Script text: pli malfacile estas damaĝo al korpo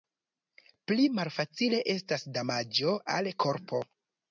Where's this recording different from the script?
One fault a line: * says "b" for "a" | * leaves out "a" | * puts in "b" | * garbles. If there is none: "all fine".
all fine